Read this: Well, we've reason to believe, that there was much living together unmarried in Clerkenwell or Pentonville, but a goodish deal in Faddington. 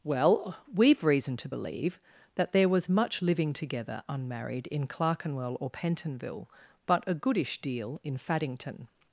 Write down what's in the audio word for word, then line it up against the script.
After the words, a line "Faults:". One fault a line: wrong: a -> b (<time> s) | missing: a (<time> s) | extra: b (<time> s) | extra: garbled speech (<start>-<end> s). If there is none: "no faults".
Well, we've reason to believe, that there was much living together unmarried in Clerkenwell or Pentonville, but a goodish deal in Faddington.
Faults:
no faults